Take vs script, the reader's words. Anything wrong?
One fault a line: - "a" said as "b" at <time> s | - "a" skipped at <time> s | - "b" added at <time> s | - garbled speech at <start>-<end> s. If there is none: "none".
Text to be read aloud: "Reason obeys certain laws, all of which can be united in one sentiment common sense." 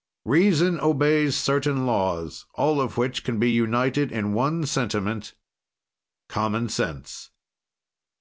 none